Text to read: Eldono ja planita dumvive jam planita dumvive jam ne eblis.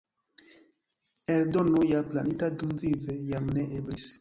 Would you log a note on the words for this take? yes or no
yes